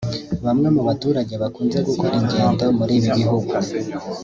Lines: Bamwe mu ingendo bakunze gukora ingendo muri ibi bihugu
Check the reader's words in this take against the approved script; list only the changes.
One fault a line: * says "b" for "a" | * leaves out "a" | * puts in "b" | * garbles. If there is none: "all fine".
* says "baturage" for "ingendo"